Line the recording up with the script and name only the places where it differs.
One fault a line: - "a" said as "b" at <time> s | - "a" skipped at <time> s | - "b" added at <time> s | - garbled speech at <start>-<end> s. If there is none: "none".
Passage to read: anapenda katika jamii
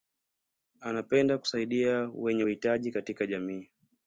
- "kusaidia wenye uhitaji" added at 1.4 s